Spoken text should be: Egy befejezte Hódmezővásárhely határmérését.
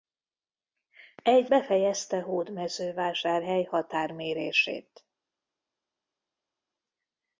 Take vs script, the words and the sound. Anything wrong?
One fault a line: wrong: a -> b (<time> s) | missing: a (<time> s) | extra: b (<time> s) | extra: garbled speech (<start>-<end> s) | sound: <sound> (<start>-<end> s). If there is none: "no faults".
no faults